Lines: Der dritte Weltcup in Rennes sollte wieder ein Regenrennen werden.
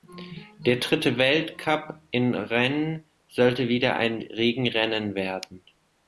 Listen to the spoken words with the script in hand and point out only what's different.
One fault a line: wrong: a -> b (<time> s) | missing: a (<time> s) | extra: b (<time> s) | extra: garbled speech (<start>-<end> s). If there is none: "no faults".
no faults